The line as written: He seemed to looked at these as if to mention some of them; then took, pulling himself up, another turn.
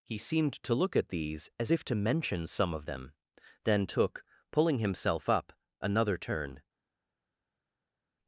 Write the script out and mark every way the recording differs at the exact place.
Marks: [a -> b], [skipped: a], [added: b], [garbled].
He seemed to [looked -> look] at these as if to mention some of them; then took, pulling himself up, another turn.